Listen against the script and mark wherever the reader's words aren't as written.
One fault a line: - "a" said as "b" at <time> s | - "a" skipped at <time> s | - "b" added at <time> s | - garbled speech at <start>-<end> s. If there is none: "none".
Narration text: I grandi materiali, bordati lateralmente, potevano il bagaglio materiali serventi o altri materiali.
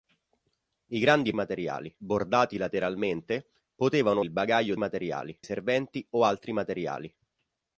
none